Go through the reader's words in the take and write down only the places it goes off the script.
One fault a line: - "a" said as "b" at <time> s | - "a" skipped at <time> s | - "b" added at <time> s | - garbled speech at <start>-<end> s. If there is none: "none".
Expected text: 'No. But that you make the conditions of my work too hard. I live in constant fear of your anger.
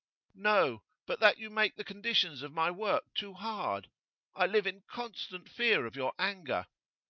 none